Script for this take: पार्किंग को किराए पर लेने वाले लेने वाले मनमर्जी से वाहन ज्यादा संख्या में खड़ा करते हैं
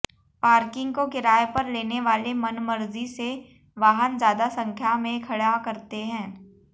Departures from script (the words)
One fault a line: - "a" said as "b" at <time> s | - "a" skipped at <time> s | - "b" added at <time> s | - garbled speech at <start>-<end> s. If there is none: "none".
- "लेने वाले" skipped at 2.3 s